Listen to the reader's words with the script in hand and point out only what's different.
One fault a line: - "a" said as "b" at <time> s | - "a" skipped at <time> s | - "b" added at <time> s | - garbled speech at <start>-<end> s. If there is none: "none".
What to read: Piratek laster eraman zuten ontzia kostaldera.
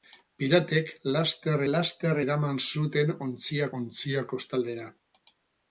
- "laster" added at 1.7 s
- "ontzia" added at 3.8 s